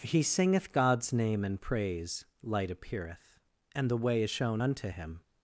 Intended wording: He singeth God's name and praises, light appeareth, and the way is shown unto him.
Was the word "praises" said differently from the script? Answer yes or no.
yes